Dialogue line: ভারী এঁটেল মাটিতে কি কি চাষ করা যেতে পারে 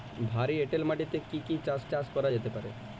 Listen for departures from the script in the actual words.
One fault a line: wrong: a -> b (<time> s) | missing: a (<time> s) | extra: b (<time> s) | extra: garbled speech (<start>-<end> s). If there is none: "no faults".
extra: চাষ (1.9 s)